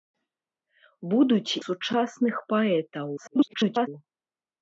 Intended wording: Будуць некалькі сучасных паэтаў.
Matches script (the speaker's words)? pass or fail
fail